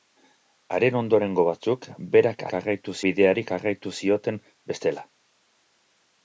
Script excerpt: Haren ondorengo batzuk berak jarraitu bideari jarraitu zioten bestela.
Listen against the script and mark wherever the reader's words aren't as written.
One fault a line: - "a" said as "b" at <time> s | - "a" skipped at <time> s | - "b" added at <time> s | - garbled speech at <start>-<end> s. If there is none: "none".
none